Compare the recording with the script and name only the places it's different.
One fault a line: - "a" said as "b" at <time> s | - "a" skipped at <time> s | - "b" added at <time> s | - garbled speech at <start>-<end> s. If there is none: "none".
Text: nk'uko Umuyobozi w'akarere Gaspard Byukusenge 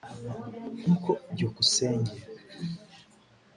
- "Umuyobozi w'akarere Gaspard" skipped at 1.1 s